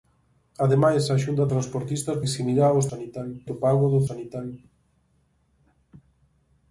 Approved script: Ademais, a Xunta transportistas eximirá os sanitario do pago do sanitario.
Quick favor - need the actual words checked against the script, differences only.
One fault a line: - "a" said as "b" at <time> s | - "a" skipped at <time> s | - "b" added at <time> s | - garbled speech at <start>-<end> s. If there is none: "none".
none